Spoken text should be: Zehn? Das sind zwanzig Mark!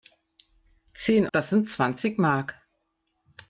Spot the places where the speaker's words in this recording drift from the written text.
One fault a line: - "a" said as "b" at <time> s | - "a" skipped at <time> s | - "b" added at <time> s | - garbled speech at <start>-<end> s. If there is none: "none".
none